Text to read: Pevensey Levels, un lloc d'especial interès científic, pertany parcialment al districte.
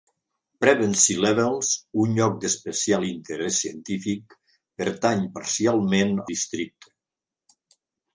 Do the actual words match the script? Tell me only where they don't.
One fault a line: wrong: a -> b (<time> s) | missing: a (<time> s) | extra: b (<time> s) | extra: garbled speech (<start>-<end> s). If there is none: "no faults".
missing: al (6.2 s)